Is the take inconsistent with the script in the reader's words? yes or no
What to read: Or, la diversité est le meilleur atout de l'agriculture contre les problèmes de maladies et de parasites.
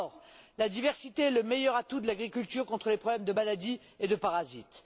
no